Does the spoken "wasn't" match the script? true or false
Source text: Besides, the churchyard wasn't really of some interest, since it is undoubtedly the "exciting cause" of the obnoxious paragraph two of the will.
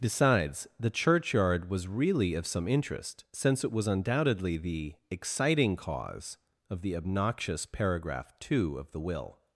false